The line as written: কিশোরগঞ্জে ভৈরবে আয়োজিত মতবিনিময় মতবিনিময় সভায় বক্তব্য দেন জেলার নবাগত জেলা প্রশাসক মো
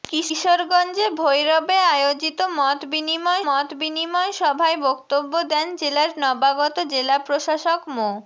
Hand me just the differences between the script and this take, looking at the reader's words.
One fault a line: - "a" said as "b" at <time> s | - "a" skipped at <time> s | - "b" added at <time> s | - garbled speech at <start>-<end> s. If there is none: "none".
none